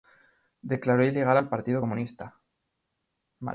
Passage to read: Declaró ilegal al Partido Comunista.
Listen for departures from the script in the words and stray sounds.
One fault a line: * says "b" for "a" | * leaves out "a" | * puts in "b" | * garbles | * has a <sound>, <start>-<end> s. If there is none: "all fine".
all fine